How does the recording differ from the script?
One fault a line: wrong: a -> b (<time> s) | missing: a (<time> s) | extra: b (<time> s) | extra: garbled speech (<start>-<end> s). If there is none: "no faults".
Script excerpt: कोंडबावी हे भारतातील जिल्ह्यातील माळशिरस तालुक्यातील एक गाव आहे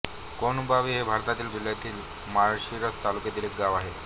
no faults